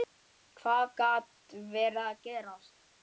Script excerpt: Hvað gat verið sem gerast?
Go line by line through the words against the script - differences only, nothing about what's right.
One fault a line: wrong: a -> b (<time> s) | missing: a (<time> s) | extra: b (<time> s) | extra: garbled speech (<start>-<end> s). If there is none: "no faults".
wrong: sem -> að (2.0 s)